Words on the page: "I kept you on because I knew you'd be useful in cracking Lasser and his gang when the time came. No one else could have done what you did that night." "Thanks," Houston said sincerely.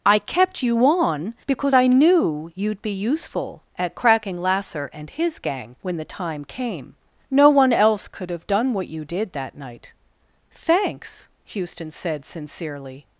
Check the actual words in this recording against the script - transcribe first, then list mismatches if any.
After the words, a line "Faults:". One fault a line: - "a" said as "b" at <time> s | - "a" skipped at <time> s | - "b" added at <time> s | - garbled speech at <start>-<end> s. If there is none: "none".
"I kept you on because I knew you'd be useful at cracking Lasser and his gang when the time came. No one else could have done what you did that night." "Thanks," Houston said sincerely.
Faults:
- "in" said as "at" at 3.8 s